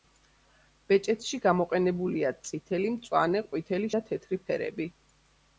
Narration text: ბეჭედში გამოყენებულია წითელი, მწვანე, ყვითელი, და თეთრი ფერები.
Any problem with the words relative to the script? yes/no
no